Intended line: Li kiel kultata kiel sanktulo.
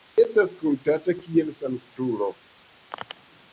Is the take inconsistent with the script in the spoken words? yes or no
yes